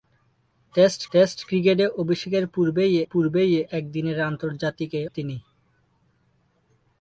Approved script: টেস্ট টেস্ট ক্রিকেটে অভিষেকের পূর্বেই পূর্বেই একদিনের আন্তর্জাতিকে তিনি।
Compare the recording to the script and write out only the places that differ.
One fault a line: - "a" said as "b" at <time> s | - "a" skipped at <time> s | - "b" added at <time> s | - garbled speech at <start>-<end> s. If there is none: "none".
none